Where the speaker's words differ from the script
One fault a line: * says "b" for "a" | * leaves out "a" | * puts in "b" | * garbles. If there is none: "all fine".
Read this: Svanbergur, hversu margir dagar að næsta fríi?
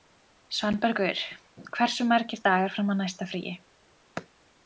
* puts in "fram"